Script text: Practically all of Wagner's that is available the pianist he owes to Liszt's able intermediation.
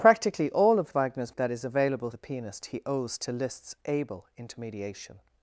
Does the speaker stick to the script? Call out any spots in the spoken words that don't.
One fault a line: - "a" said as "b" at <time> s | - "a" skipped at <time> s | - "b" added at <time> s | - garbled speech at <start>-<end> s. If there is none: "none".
none